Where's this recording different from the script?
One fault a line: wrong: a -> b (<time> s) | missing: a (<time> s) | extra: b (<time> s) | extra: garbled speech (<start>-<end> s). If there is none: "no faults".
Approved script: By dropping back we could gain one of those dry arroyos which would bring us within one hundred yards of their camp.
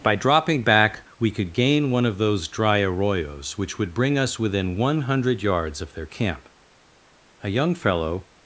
extra: A young fellow (7.4 s)